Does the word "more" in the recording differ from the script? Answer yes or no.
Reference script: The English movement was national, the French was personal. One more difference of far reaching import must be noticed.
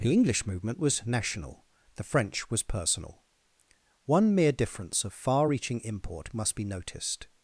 yes